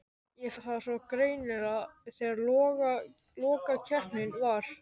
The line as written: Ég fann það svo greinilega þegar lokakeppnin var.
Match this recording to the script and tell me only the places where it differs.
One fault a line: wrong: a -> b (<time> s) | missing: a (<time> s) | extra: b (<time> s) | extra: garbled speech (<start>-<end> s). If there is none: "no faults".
missing: fann (0.5 s)